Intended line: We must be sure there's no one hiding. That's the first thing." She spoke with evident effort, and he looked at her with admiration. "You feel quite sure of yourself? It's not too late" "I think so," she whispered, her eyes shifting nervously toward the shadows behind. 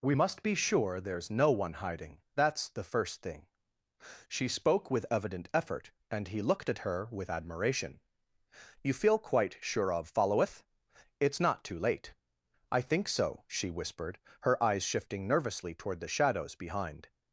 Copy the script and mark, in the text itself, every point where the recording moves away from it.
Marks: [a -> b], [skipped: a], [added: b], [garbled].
We must be sure there's no one hiding. That's the first thing." She spoke with evident effort, and he looked at her with admiration. "You feel quite sure of [yourself? -> followeth] It's not too late" "I think so," she whispered, her eyes shifting nervously toward the shadows behind.